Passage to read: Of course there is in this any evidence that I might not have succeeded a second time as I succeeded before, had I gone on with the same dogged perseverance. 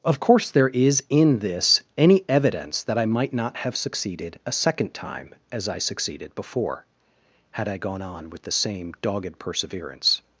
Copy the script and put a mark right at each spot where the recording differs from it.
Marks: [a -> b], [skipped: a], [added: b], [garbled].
Of course there is in this any evidence that I might not have succeeded a second time as I succeeded before, had I gone on with the same dogged perseverance.